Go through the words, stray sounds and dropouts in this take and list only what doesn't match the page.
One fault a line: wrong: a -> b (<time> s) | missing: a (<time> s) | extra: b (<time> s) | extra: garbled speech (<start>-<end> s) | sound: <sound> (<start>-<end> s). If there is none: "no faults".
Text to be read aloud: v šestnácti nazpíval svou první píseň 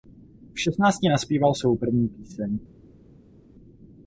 no faults